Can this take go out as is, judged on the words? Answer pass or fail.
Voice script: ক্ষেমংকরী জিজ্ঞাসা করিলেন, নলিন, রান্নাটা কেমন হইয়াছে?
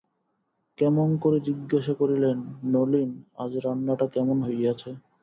fail